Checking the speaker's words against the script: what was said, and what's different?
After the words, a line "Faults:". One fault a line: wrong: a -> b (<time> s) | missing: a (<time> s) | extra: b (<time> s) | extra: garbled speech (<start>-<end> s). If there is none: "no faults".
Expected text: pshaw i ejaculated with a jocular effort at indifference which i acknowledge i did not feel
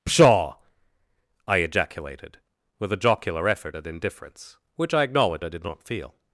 pshaw i ejaculated with a jocular effort at indifference which i acknowledge i did not feel
Faults:
no faults